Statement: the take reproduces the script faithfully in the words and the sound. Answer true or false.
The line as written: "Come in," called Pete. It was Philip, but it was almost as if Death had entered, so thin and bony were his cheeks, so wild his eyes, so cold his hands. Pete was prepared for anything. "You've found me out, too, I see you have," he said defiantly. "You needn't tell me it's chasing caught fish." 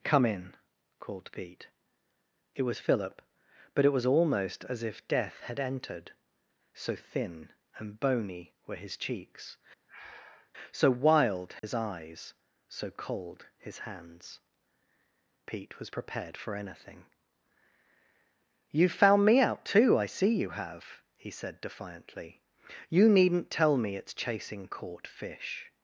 false